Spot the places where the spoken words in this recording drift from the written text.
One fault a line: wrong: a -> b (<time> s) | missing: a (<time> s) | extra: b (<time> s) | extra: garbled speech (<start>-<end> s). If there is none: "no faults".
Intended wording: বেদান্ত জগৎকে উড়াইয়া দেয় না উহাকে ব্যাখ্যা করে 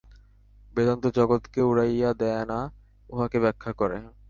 no faults